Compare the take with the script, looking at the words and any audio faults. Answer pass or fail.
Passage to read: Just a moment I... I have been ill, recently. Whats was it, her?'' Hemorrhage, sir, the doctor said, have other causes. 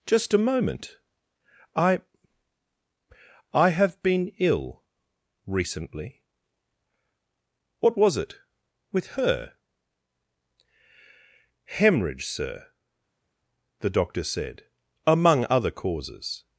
fail